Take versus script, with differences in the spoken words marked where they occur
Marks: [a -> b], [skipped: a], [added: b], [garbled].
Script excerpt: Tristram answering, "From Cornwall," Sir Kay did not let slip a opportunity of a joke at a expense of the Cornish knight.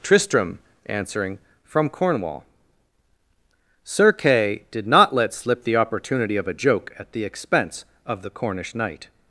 Tristram answering, "From Cornwall," Sir Kay did not let slip [a -> the] opportunity of a joke at [a -> the] expense of the Cornish knight.